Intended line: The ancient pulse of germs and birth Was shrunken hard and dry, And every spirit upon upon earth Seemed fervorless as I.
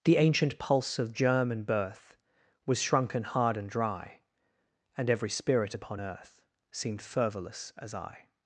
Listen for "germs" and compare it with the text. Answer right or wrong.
wrong